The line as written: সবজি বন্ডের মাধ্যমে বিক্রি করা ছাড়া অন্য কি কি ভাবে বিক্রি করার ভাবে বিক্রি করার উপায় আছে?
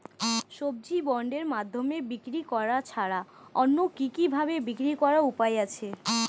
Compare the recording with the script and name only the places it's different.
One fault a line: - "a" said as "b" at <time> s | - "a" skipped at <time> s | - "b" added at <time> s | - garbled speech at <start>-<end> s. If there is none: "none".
- "ভাবে বিক্রি করার" skipped at 5.2 s